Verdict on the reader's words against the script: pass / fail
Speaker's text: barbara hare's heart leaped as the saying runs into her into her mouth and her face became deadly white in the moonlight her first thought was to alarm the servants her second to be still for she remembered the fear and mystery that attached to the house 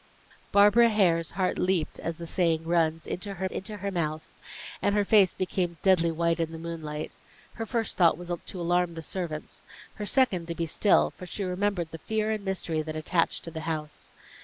pass